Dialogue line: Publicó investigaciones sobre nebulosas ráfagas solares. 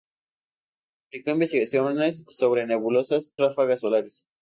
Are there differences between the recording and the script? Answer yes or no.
no